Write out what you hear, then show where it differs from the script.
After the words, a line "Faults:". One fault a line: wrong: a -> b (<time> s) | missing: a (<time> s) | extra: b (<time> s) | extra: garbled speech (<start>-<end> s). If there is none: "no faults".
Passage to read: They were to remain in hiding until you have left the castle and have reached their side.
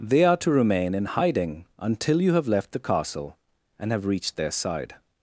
They are to remain in hiding until you have left the castle and have reached their side.
Faults:
wrong: were -> are (0.2 s)